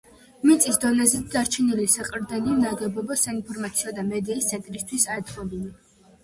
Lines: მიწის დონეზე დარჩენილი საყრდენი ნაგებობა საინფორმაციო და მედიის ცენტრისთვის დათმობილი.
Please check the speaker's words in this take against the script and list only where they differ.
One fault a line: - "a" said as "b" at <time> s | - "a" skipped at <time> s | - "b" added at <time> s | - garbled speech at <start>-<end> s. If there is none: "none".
none